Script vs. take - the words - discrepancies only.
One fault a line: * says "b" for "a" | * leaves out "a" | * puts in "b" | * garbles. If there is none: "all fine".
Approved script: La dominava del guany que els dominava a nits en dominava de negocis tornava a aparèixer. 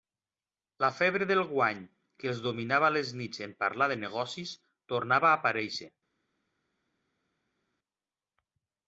* says "febre" for "dominava"
* puts in "les"
* says "parlar" for "dominava"